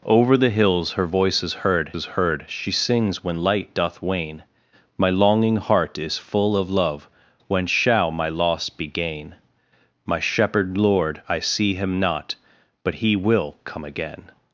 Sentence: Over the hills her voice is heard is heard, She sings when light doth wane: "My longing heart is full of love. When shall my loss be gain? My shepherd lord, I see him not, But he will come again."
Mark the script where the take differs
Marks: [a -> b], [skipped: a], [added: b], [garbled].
Over the hills her voice is heard is heard, She sings when light doth wane: "My longing heart is full of love. When shall my loss be gain? My shepherd lord, I see him not, But he will come again."